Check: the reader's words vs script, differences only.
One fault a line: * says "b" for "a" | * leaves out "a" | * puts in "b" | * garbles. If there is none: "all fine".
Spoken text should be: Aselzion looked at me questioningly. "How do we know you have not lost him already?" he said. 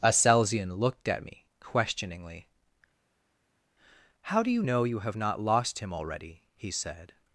* says "you" for "we"